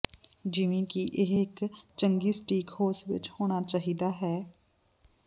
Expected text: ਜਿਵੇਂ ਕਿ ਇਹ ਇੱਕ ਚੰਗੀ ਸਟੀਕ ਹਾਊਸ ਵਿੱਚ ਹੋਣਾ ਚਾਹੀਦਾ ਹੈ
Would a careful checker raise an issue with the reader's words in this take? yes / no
no